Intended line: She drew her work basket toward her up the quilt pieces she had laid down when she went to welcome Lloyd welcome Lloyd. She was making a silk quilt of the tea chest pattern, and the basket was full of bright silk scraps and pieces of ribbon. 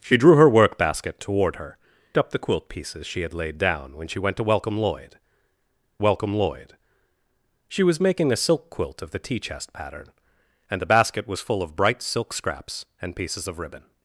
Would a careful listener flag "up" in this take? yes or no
no